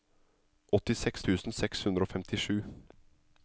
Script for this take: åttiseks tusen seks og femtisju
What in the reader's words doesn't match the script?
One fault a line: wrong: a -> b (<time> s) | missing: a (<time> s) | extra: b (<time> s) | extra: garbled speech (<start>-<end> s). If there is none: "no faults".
extra: hundre (1.9 s)